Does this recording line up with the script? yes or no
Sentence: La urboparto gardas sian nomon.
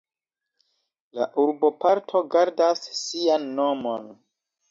yes